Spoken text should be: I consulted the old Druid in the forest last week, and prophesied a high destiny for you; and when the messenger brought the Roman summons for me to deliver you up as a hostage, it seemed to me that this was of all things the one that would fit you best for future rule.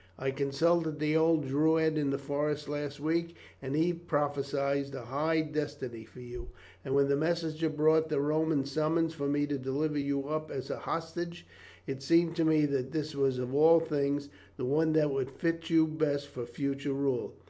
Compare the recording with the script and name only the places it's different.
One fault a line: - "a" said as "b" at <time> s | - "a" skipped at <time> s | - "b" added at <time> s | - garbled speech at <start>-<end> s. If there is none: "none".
- "he" added at 3.8 s